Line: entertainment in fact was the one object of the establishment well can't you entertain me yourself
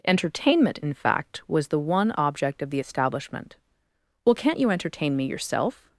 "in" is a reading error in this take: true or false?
false